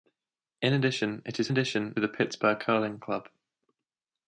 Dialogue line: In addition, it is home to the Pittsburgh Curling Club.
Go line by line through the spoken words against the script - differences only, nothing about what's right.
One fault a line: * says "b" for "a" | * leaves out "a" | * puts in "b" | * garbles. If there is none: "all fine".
* says "addition" for "home"